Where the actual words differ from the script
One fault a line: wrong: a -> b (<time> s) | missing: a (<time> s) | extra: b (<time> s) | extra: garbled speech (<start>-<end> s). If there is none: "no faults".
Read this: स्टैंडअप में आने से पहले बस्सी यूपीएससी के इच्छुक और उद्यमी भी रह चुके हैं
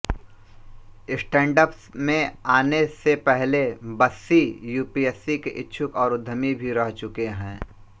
no faults